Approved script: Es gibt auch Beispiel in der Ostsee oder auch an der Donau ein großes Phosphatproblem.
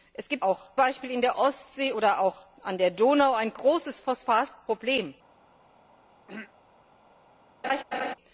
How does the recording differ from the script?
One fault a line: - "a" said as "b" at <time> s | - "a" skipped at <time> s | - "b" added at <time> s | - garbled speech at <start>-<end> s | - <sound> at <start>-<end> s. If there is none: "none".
- throat clearing at 6.3-6.5 s
- laugh at 7.6-8.1 s